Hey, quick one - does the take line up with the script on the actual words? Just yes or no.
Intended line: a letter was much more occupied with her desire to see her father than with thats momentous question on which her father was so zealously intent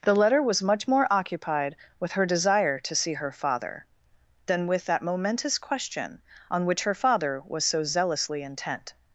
no